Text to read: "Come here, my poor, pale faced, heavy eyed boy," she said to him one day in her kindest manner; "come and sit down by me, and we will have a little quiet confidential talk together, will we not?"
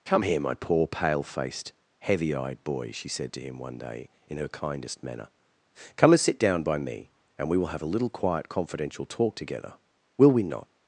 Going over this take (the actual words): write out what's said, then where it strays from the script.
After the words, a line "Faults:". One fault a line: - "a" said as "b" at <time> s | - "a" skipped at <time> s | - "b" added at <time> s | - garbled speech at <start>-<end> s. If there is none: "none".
"Come here, my poor, pale faced, heavy eyed boy," she said to him one day in her kindest manner; "come and sit down by me, and we will have a little quiet confidential talk together, will we not?"
Faults:
none